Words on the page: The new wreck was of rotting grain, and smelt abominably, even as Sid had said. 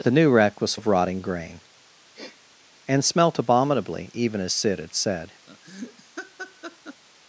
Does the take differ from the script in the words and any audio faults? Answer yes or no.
yes